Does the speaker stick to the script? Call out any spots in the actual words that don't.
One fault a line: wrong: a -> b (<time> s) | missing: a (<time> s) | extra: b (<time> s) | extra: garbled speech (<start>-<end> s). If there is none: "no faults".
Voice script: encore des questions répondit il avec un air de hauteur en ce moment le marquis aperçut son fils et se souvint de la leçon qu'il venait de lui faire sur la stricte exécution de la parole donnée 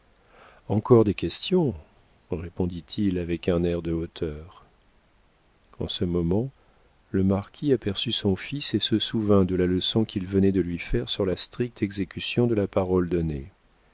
no faults